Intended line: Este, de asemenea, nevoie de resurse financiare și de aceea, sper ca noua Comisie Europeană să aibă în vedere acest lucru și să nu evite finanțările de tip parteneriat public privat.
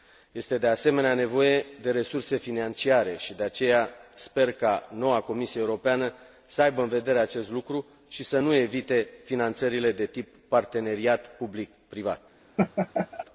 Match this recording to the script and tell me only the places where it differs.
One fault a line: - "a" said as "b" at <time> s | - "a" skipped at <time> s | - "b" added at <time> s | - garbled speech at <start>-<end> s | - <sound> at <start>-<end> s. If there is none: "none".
- laugh at 12.6-13.3 s